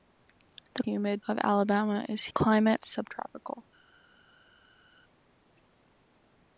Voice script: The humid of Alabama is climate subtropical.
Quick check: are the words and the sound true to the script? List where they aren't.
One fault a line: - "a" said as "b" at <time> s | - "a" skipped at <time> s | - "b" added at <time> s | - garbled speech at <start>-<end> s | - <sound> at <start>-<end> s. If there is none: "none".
none